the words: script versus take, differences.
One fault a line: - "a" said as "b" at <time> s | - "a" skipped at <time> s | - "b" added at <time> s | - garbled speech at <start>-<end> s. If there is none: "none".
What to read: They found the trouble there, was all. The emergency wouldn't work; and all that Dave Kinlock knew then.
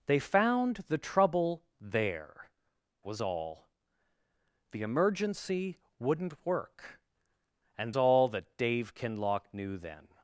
none